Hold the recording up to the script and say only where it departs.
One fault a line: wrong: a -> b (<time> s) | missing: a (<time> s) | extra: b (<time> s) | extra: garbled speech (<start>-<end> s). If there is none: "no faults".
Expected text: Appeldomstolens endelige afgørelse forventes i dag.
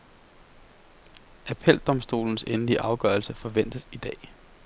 no faults